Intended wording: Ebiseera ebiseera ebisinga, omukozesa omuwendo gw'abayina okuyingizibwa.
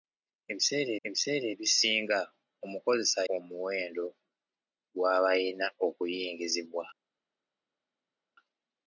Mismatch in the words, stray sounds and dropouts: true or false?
false